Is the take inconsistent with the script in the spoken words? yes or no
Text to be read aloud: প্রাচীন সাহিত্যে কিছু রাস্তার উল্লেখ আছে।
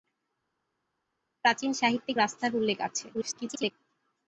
yes